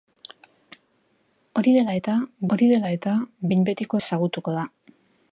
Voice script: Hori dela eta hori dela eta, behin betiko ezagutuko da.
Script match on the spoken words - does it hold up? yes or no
yes